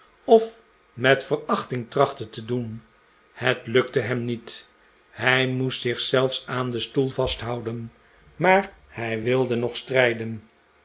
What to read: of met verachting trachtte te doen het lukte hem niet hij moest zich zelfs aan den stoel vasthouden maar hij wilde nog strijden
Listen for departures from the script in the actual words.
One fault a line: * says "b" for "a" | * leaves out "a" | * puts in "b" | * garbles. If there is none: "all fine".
all fine